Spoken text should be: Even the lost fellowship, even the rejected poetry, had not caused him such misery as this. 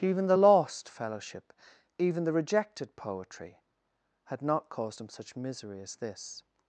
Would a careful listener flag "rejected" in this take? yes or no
no